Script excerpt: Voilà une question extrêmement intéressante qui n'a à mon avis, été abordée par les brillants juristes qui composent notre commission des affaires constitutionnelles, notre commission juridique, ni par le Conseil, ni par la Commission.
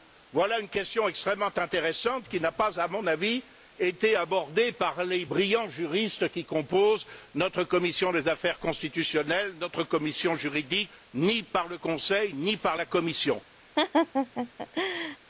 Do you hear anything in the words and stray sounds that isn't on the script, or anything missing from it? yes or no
yes